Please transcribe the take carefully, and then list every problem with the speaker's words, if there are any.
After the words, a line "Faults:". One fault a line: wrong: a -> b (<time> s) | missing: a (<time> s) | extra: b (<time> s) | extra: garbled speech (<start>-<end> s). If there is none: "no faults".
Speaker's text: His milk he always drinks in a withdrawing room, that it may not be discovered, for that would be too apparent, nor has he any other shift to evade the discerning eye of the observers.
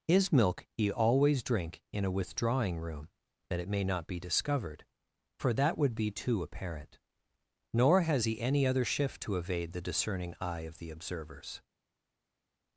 His milk he always drink in a withdrawing room, that it may not be discovered, for that would be too apparent, nor has he any other shift to evade the discerning eye of the observers.
Faults:
wrong: drinks -> drink (1.4 s)